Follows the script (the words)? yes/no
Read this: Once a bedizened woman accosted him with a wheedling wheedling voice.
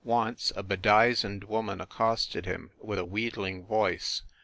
no